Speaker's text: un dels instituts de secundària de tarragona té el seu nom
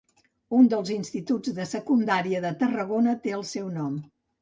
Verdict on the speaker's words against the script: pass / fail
pass